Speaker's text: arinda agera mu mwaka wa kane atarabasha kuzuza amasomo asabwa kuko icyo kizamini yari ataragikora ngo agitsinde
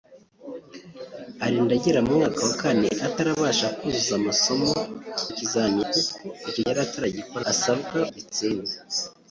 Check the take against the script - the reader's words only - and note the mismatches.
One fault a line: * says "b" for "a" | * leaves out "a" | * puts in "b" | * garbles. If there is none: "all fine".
* says "kizamini" for "asabwa"
* leaves out "kizamini"
* says "asabwa" for "ngo"